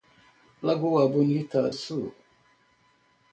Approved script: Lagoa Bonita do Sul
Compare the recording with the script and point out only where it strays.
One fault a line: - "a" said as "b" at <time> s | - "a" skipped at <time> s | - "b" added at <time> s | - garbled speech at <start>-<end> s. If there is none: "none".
- "do" skipped at 1.7 s